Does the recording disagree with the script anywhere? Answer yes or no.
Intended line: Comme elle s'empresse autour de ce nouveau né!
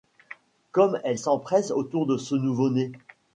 no